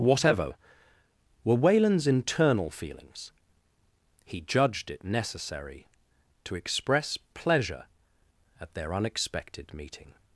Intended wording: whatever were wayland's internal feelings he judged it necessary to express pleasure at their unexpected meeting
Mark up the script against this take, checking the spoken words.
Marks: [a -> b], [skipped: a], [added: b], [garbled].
whatever were wayland's internal feelings he judged it necessary to express pleasure at their unexpected meeting